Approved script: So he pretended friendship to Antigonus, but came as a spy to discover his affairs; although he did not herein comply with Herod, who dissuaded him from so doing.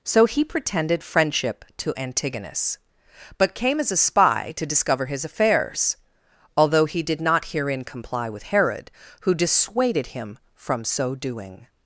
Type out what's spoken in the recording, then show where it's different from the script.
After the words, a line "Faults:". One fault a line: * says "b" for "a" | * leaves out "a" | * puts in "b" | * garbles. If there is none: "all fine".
So he pretended friendship to Antigonus, but came as a spy to discover his affairs; although he did not herein comply with Herod, who dissuaded him from so doing.
Faults:
all fine